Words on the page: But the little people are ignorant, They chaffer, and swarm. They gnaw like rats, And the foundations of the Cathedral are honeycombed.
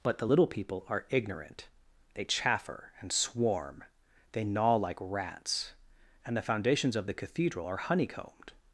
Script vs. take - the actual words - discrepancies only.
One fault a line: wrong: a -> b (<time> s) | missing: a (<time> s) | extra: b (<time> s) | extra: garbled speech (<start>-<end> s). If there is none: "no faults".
no faults